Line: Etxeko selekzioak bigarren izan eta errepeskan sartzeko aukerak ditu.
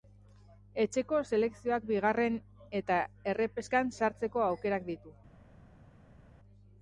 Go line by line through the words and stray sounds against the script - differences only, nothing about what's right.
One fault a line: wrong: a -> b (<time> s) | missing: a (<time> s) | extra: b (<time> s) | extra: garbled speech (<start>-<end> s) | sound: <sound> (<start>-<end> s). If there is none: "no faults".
missing: izan (2.4 s)